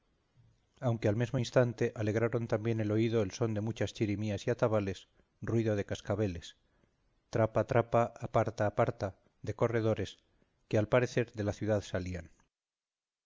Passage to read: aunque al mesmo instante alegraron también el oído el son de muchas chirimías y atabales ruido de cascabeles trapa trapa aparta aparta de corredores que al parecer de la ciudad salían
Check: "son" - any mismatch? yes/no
no